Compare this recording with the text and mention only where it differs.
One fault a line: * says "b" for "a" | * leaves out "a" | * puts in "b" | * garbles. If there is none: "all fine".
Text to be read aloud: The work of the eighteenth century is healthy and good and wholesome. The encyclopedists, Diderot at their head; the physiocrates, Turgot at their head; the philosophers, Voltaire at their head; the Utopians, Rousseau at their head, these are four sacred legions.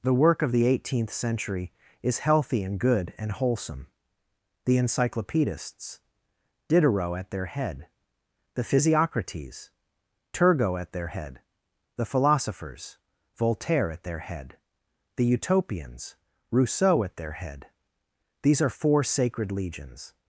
all fine